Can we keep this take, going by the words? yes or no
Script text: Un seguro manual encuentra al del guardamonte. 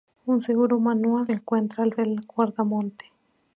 yes